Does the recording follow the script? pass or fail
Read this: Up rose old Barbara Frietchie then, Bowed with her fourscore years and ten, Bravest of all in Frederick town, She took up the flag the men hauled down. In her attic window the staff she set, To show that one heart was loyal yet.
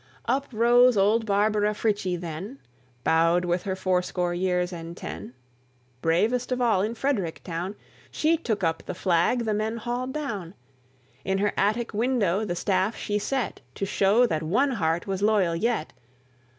pass